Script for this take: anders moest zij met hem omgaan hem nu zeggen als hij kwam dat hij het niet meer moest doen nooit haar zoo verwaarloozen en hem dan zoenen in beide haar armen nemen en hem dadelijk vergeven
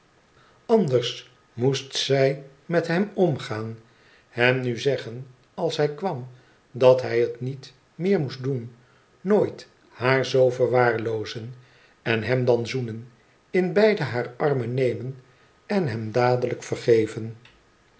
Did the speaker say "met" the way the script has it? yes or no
yes